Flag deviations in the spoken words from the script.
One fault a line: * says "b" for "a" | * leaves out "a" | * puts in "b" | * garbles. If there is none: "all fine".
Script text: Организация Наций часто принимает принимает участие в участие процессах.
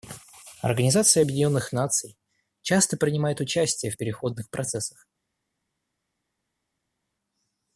* puts in "Объединенных"
* leaves out "принимает"
* says "переходных" for "участие"